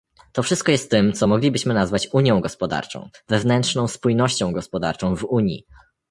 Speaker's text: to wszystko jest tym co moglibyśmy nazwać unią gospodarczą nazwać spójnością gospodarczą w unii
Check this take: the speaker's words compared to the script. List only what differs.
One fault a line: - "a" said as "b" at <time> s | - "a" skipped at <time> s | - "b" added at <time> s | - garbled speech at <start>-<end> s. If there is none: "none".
- "nazwać" said as "wewnętrzną" at 3.3 s